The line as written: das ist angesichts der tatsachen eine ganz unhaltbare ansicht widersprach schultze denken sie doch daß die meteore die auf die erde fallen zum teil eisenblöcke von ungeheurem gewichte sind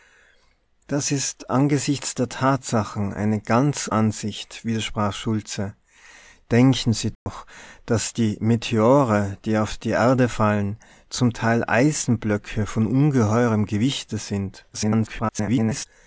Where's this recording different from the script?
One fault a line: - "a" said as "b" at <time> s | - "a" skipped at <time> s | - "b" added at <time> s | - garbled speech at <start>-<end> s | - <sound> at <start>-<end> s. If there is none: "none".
- "unhaltbare" skipped at 3.9 s
- dropout at 7.1-7.3 s
- garbled speech at 14.7-15.9 s